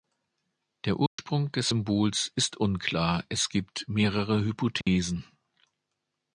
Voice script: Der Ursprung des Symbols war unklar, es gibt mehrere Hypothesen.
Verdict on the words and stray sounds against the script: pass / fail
fail